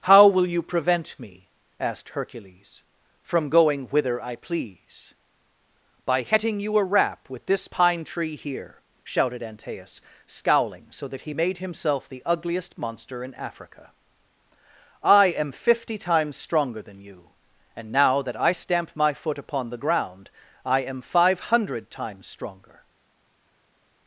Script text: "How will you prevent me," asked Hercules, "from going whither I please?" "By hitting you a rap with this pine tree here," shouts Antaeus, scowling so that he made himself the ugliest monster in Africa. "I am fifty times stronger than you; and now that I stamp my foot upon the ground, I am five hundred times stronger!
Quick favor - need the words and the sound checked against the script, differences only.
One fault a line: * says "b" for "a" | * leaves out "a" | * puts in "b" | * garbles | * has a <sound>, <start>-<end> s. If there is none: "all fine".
* says "shouted" for "shouts"